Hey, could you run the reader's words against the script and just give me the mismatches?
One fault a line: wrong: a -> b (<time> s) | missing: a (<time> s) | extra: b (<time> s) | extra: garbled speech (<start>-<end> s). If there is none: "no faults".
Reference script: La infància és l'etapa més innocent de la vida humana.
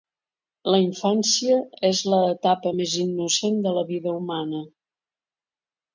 no faults